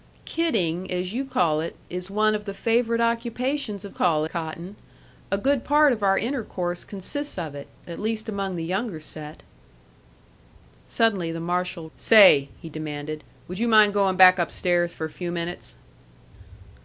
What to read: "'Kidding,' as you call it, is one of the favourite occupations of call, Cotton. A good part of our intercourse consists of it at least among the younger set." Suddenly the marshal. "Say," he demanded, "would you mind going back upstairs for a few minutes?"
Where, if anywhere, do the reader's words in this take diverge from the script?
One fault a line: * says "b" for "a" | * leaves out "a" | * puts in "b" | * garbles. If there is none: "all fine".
all fine